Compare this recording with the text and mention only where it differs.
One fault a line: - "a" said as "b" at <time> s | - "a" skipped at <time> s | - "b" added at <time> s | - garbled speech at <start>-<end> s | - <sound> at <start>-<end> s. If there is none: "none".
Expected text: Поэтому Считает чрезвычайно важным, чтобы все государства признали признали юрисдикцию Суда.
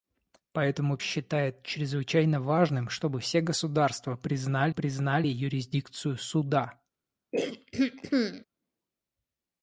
- throat clearing at 7.3-8.4 s